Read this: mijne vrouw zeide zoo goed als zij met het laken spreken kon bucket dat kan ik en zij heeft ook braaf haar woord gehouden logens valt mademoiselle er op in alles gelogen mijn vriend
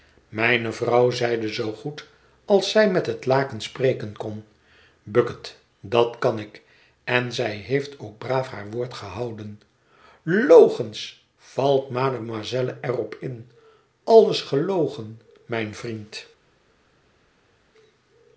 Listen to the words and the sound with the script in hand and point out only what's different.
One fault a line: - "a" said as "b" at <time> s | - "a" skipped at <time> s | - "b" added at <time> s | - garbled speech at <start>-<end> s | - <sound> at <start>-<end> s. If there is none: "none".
none